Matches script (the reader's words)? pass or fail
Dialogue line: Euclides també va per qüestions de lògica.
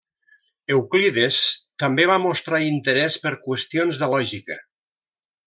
fail